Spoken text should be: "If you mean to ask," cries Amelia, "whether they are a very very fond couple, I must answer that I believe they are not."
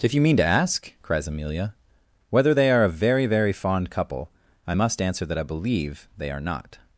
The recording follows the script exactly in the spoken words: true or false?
true